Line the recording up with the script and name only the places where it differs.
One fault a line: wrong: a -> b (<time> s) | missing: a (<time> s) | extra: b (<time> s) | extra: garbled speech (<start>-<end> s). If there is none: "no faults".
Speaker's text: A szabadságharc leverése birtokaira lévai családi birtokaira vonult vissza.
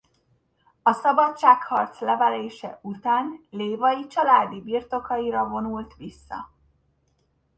wrong: birtokaira -> után (2.8 s)